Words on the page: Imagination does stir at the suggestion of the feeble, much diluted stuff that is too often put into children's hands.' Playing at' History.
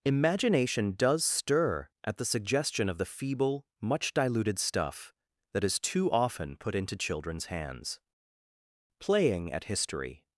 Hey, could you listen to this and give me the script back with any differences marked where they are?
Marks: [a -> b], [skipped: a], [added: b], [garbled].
Imagination does stir at the suggestion of the feeble, much diluted stuff that is too often put into children's hands.' Playing at' History.